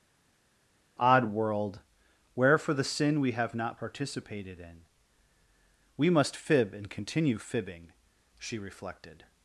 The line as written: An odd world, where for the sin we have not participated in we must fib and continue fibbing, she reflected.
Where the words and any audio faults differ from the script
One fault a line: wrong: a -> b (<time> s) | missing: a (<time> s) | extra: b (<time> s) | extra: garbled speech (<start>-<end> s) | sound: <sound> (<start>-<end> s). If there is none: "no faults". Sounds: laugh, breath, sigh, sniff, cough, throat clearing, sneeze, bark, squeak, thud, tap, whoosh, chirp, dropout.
missing: An (1.0 s)